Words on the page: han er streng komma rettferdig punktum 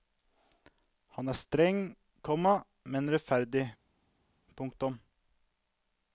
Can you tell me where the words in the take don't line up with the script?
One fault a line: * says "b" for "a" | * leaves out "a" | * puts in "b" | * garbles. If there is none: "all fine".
* puts in "men"